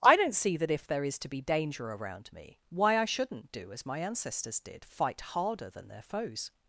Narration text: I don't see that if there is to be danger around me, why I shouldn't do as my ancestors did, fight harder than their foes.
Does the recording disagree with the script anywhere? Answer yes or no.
no